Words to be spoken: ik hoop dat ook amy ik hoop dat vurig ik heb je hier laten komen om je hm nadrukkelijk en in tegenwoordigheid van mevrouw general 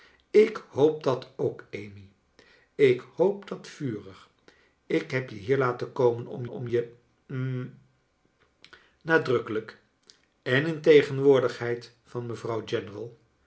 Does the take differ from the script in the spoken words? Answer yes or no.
yes